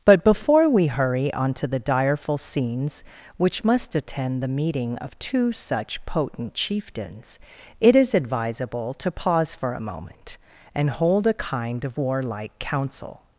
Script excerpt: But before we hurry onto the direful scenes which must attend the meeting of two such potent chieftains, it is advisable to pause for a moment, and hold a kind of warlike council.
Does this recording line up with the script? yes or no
yes